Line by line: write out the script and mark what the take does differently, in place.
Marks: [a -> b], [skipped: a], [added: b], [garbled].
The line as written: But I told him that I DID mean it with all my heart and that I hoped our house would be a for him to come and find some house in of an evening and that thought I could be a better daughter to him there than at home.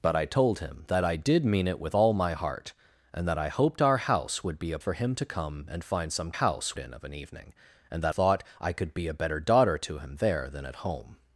But I told him that I DID mean it with all my heart and that I hoped our house would be a for him to come and find some house in of an evening and that thought I could be a better daughter to him there than at home.